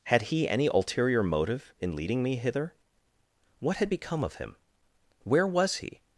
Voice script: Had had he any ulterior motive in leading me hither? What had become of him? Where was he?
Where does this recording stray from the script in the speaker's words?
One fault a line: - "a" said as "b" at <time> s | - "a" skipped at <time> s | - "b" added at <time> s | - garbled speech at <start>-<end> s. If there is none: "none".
- "had" skipped at 0.2 s